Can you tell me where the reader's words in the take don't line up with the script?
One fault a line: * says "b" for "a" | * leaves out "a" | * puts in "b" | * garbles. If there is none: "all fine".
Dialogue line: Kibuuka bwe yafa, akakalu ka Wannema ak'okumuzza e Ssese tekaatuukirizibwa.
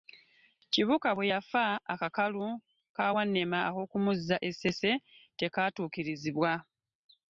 all fine